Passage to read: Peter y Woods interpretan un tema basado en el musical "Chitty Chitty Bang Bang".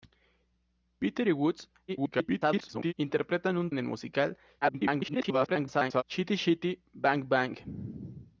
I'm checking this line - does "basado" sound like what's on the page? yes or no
no